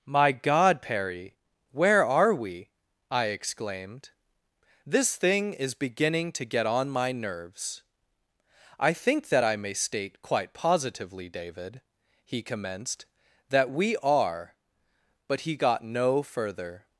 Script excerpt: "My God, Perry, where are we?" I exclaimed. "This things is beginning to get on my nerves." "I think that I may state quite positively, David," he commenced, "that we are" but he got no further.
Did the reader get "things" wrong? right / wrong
wrong